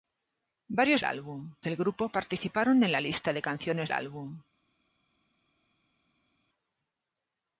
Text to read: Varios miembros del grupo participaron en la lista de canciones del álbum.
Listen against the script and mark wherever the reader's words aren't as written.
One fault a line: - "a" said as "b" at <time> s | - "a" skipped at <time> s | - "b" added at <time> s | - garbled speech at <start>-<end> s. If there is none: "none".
- "miembros" said as "álbum" at 1.0 s
- "del" skipped at 3.9 s